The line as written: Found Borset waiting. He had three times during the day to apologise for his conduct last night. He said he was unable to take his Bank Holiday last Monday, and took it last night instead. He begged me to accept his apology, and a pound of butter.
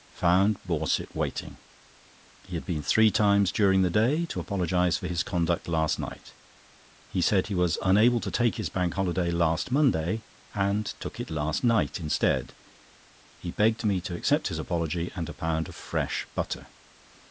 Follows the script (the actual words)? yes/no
no